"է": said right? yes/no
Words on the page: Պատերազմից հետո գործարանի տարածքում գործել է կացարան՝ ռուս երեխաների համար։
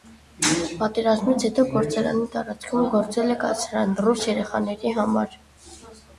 yes